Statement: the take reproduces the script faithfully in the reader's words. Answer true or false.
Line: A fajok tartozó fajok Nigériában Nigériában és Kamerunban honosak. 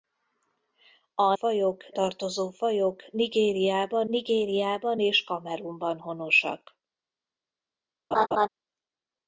true